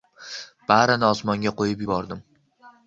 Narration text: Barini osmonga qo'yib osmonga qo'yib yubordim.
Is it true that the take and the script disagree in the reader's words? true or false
true